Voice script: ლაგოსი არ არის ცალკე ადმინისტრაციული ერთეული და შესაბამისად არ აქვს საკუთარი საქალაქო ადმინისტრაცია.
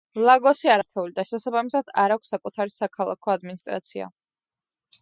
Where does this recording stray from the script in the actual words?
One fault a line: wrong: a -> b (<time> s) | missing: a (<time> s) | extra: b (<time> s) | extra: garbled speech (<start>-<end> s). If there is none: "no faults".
missing: არის ცალკე ადმინისტრაციული (0.8 s)